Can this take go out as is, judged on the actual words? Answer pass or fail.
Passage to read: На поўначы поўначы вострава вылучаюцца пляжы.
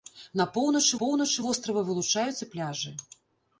pass